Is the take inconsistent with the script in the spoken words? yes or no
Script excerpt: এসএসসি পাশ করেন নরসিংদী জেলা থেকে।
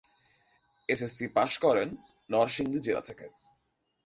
no